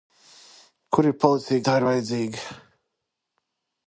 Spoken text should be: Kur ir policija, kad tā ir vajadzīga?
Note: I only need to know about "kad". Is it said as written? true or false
false